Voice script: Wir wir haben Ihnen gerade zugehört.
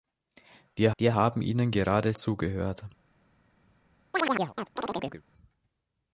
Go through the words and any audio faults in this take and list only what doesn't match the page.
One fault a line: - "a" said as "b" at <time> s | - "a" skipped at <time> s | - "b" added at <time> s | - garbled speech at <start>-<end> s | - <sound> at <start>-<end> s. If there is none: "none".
- chirp at 4.1-5.2 s